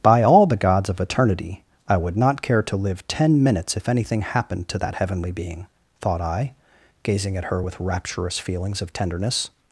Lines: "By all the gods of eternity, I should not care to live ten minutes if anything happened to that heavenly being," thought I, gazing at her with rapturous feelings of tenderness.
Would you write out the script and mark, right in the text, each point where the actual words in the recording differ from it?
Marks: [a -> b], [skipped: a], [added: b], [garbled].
"By all the gods of eternity, I [should -> would] not care to live ten minutes if anything happened to that heavenly being," thought I, gazing at her with rapturous feelings of tenderness.